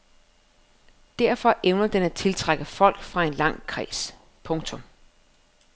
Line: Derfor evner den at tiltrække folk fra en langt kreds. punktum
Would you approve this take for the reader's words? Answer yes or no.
yes